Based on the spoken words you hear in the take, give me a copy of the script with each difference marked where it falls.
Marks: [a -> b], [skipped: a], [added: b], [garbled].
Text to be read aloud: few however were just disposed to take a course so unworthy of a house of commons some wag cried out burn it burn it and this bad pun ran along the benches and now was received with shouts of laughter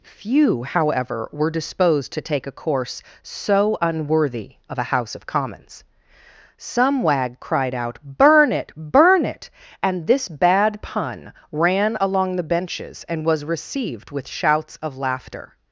few however were [skipped: just] disposed to take a course so unworthy of a house of commons some wag cried out burn it burn it and this bad pun ran along the benches and [skipped: now] was received with shouts of laughter